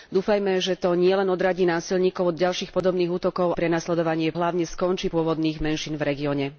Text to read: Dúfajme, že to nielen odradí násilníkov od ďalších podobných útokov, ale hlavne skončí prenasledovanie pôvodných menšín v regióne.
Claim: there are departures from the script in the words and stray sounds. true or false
true